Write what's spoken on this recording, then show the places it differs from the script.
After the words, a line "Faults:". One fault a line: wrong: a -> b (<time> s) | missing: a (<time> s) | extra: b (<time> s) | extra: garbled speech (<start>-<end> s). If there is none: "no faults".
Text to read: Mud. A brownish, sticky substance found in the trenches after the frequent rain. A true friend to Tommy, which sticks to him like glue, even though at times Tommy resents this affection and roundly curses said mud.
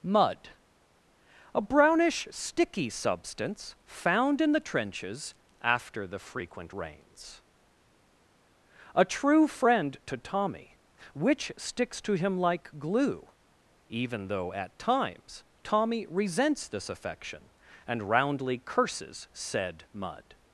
Mud. A brownish, sticky substance found in the trenches after the frequent rains. A true friend to Tommy, which sticks to him like glue, even though at times Tommy resents this affection and roundly curses said mud.
Faults:
wrong: rain -> rains (6.7 s)